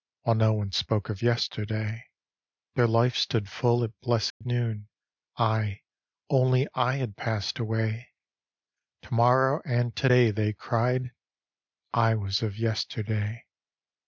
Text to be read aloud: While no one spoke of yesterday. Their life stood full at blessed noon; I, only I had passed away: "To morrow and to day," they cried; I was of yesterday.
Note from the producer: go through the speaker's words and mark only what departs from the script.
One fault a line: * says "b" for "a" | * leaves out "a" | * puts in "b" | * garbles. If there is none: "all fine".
all fine